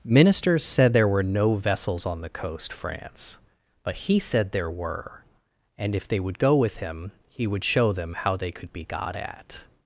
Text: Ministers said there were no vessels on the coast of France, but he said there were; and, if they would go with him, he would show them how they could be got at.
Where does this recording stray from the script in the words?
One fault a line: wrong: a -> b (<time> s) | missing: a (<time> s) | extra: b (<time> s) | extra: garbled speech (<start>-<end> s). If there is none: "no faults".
missing: of (2.7 s)